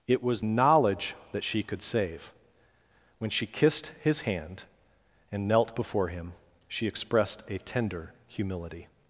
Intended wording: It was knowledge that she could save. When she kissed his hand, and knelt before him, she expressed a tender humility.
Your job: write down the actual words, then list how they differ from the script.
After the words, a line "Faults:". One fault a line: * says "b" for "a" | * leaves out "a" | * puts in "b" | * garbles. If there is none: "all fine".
It was knowledge that she could save. When she kissed his hand, and knelt before him, she expressed a tender humility.
Faults:
all fine